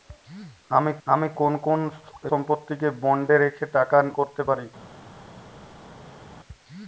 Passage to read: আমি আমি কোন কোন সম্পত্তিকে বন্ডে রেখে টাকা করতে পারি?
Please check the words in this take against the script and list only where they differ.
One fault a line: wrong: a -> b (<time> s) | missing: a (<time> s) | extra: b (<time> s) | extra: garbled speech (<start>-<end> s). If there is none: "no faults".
no faults